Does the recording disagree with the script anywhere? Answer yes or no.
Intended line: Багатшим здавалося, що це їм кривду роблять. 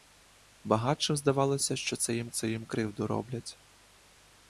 yes